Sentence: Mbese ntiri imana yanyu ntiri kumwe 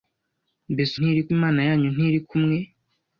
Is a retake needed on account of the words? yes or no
no